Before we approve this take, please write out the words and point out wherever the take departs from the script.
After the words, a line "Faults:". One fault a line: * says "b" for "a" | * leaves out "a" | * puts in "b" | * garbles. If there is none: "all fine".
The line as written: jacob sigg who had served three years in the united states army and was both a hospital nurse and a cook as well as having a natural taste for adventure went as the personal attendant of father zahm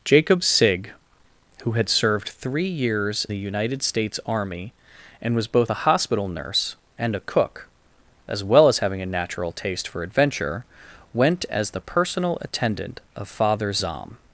jacob sigg who had served three years the united states army and was both a hospital nurse and a cook as well as having a natural taste for adventure went as the personal attendant of father zahm
Faults:
* leaves out "in"